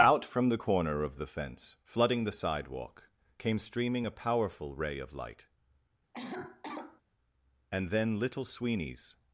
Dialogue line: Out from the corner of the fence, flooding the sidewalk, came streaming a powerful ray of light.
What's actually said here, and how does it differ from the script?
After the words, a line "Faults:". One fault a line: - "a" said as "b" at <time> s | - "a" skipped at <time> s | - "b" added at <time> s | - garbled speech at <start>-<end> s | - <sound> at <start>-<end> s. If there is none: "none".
Out from the corner of the fence, flooding the sidewalk, came streaming a powerful ray of light. And then Little Sweeney's
Faults:
- cough at 6.1-7.0 s
- "And then Little Sweeney's" added at 7.7 s